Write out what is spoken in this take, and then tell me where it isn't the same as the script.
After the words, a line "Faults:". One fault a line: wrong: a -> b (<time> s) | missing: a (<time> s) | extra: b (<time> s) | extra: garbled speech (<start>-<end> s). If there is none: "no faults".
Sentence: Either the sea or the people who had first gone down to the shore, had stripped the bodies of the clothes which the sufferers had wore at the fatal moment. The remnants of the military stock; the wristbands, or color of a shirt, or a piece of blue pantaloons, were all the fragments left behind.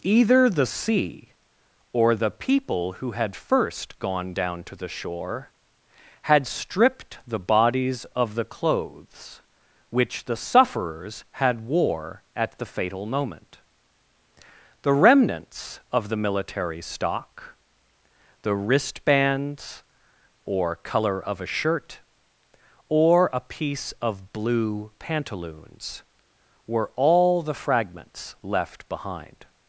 Either the sea or the people who had first gone down to the shore, had stripped the bodies of the clothes which the sufferers had wore at the fatal moment. The remnants of the military stock; the wristbands, or color of a shirt, or a piece of blue pantaloons, were all the fragments left behind.
Faults:
no faults